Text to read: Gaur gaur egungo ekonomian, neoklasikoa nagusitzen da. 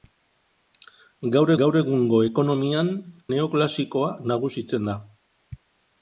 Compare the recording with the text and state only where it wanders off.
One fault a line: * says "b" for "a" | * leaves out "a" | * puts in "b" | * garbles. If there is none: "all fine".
all fine